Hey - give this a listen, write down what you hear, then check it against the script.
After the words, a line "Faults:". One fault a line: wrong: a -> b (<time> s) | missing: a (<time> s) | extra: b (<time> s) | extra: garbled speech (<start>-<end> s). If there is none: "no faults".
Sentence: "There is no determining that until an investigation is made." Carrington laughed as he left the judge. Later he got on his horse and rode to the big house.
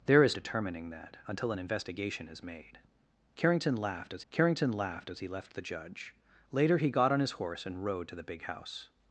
"There is determining that until an investigation is made." Carrington laughed as carrington laughed as he left the judge. Later he got on his horse and rode to the big house.
Faults:
missing: no (0.3 s)
extra: carrington laughed as (4.3 s)